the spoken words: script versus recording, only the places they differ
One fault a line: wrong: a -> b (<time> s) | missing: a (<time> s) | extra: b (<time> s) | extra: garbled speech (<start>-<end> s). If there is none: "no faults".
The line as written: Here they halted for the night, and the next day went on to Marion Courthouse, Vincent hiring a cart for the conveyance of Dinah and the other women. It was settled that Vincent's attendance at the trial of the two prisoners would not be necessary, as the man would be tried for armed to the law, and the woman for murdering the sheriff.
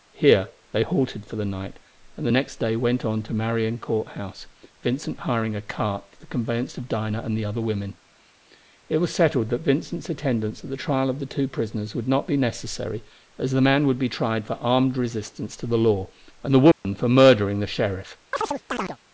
extra: resistance (15.0 s)